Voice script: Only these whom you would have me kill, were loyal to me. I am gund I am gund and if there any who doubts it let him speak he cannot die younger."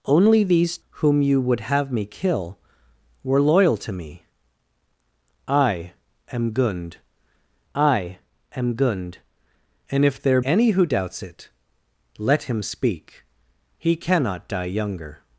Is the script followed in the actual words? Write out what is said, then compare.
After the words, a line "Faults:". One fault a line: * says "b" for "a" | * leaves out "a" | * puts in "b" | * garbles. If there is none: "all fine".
Only these whom you would have me kill, were loyal to me. I am gund I am gund and if there any who doubts it let him speak he cannot die younger."
Faults:
all fine